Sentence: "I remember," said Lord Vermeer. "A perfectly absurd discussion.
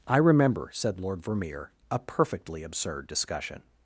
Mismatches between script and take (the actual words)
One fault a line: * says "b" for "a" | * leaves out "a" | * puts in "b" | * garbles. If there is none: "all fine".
all fine